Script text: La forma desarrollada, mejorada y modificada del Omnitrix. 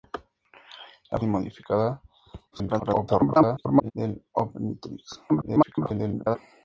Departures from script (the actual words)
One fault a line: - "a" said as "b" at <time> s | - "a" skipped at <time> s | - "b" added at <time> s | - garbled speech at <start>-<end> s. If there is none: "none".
- "forma desarrollada mejorada" skipped at 1.2 s
- garbled speech at 2.5-3.9 s
- garbled speech at 5.3-6.4 s